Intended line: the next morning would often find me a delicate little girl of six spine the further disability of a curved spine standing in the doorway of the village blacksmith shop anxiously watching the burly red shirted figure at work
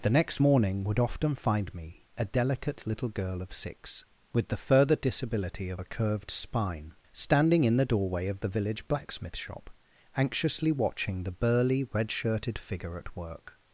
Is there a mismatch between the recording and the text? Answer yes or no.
yes